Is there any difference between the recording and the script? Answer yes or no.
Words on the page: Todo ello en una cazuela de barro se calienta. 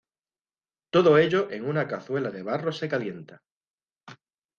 no